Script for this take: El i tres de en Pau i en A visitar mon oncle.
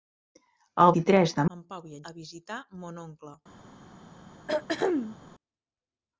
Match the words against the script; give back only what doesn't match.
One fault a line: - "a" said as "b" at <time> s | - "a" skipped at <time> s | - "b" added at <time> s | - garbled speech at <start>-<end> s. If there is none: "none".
none